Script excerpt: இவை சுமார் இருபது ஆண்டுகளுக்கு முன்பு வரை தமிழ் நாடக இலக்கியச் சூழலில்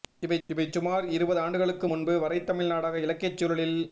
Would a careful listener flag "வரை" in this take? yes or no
no